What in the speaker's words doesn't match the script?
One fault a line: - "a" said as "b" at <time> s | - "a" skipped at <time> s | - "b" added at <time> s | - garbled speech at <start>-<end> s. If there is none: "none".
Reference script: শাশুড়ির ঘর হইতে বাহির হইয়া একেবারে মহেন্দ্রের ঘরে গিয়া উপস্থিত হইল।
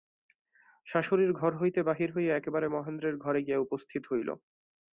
none